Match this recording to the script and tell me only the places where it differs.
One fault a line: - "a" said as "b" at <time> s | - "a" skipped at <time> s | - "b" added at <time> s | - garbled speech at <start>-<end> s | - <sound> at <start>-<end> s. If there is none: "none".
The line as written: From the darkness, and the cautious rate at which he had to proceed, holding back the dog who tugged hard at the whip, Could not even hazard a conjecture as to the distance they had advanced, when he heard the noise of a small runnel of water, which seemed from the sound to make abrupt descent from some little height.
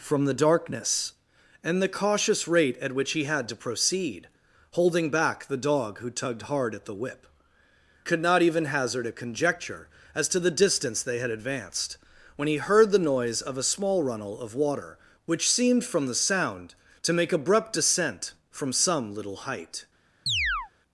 - chirp at 20.3-20.7 s